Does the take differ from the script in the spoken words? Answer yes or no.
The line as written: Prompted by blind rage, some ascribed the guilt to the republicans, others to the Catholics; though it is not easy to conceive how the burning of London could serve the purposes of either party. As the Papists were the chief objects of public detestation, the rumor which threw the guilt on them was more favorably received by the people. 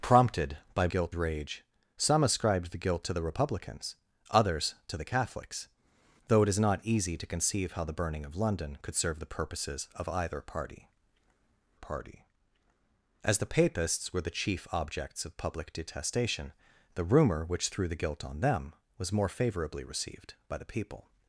yes